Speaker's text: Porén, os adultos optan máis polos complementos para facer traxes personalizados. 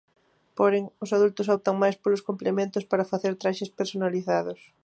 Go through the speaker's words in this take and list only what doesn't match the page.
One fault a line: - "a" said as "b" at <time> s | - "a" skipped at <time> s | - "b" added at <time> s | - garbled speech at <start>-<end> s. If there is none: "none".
none